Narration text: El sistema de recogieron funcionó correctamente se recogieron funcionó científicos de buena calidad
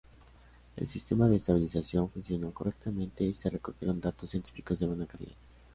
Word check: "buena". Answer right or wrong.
right